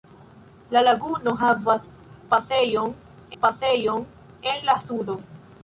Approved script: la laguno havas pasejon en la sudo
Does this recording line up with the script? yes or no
no